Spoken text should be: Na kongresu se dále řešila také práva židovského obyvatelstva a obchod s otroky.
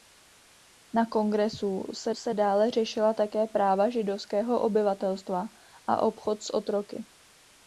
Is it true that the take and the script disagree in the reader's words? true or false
true